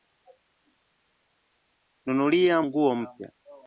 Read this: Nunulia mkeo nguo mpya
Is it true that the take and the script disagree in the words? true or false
true